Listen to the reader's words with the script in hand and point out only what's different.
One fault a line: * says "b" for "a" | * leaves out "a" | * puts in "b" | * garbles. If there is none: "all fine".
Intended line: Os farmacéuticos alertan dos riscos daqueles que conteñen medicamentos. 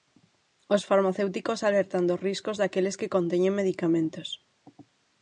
all fine